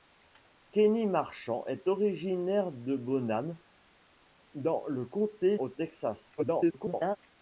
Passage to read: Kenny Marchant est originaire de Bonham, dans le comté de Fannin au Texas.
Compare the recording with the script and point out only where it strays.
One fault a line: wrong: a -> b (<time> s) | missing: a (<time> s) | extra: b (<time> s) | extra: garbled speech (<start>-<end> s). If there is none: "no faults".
missing: de Fannin (5.6 s)
extra: garbled speech (6.4-7.2 s)